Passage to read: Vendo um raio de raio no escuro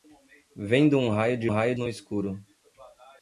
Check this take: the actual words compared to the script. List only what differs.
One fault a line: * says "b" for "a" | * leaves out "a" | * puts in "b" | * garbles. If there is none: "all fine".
all fine